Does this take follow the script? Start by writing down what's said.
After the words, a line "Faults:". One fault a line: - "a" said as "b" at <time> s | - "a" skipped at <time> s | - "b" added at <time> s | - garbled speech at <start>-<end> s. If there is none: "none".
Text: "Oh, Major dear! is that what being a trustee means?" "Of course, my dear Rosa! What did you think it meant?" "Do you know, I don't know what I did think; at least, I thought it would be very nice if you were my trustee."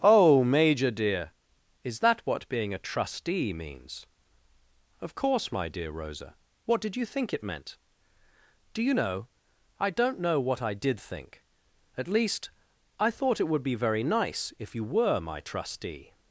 "Oh, Major dear! is that what being a trustee means?" "Of course, my dear Rosa! What did you think it meant?" "Do you know, I don't know what I did think; at least, I thought it would be very nice if you were my trustee."
Faults:
none